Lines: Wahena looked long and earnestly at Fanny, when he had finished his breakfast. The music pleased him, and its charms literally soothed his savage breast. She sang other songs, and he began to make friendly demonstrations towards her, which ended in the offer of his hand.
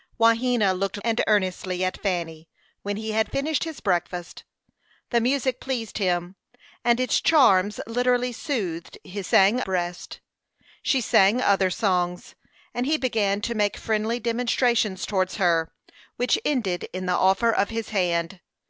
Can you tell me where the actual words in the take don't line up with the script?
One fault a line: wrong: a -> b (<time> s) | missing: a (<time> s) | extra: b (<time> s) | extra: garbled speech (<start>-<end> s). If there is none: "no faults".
missing: long (1.0 s)
wrong: savage -> sang (9.2 s)